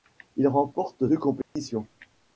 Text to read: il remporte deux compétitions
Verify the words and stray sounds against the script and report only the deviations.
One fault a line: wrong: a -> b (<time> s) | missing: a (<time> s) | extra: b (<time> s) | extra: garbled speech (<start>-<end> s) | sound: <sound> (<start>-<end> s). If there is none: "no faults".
sound: dropout (1.4-1.6 s)